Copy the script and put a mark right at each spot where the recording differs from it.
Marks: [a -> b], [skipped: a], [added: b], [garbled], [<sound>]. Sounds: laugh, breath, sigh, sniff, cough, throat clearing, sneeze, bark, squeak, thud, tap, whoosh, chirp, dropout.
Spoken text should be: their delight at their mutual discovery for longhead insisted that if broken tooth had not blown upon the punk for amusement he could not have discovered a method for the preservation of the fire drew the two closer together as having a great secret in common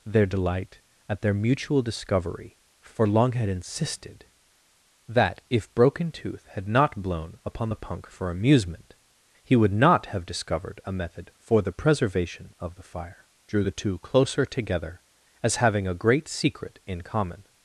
their delight at their mutual discovery for longhead insisted that if broken tooth had not blown upon the punk for amusement he [could -> would] not have discovered a method for the preservation of the fire drew the two closer together as having a great secret in common